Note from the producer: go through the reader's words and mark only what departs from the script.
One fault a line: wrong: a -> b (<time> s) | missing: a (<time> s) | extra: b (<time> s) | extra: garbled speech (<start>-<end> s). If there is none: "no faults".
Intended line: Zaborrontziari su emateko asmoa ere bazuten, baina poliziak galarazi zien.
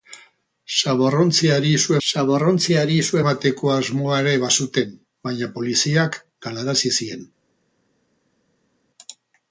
extra: zaborrontziari su (2.1 s)